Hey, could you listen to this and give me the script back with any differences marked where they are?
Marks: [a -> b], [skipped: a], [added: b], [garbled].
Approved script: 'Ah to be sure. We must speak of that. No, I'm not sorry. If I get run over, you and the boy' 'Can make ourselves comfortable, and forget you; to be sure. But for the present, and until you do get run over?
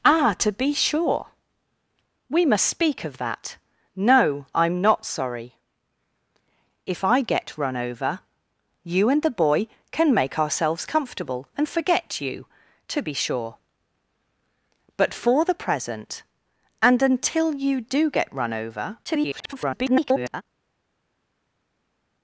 'Ah to be sure. We must speak of that. No, I'm not sorry. If I get run over, you and the boy' 'Can make ourselves comfortable, and forget you; to be sure. But for the present, and until you do get run over? [garbled]